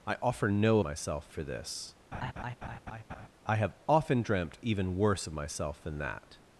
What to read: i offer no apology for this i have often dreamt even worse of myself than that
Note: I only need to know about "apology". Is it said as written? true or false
false